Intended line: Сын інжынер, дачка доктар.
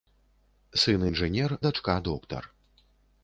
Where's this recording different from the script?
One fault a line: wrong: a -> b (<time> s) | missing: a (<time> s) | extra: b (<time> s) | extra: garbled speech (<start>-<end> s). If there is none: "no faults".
no faults